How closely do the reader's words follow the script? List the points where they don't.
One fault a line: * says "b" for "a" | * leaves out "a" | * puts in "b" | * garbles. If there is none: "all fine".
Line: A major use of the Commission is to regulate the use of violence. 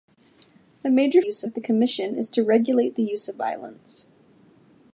all fine